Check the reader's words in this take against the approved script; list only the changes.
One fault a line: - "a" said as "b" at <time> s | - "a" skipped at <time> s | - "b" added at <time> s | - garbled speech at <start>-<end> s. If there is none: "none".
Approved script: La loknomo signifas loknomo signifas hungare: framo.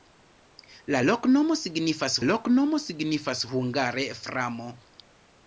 none